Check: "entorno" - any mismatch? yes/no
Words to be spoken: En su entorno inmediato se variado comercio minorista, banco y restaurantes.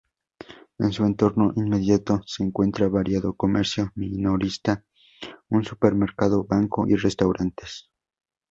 no